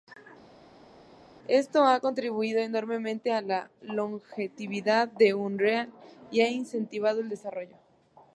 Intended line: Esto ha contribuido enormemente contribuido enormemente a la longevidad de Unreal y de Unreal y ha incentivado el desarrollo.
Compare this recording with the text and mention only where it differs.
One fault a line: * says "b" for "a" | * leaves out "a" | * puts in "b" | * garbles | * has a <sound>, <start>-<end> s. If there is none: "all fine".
* leaves out "contribuido enormemente"
* leaves out "de Unreal y"